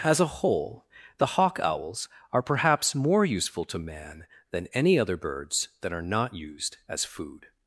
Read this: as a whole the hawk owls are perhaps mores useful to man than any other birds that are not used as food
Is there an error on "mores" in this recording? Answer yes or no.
yes